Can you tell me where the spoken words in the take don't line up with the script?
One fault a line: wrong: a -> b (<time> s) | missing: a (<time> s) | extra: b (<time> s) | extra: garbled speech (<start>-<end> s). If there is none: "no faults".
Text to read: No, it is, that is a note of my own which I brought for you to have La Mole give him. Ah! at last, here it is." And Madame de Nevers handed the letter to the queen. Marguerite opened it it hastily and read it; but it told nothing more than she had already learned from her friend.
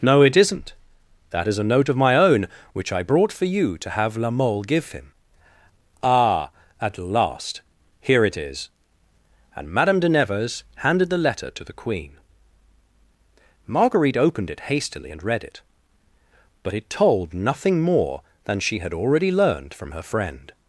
wrong: is -> isn't (0.3 s)
missing: it (14.6 s)